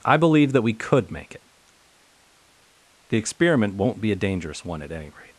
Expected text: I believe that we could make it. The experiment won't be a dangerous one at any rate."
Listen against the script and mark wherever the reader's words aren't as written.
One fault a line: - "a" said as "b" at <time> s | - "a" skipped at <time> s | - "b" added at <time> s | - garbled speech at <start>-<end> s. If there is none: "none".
none